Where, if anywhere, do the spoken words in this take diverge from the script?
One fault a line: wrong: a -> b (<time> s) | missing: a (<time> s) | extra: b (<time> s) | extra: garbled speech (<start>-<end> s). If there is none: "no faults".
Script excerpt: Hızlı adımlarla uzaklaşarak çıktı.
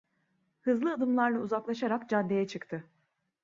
extra: caddeye (2.1 s)